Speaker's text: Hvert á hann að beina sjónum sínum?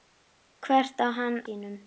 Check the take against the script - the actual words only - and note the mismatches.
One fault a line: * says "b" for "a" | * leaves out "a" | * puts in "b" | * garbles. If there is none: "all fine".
* leaves out "að beina sjónum"